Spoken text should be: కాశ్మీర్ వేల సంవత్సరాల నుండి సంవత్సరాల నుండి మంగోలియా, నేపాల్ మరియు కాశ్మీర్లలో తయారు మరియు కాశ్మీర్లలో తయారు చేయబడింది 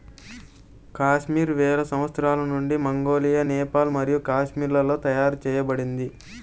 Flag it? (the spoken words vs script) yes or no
yes